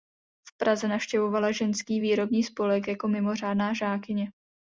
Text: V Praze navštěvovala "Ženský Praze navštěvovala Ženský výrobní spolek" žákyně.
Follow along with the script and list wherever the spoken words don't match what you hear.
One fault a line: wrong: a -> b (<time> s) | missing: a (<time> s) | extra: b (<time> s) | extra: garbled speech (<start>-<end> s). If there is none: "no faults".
wrong: Praze navštěvovala Ženský výrobní spolek -> výrobní spolek jako mimořádná (2.0 s)